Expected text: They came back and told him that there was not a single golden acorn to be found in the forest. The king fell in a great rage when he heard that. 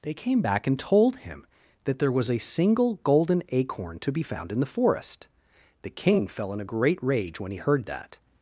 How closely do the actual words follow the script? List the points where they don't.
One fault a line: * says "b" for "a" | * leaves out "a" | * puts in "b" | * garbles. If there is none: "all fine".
* leaves out "not"